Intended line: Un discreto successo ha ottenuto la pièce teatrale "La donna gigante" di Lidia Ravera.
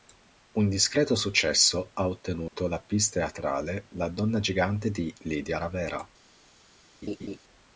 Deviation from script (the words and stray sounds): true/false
true